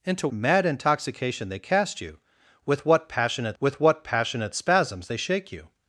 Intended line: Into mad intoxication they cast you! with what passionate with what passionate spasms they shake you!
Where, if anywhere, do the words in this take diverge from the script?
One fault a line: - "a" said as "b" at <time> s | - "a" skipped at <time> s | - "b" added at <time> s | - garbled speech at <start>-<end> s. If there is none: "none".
none